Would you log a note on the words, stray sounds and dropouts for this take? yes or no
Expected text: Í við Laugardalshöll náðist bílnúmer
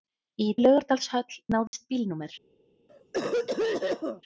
yes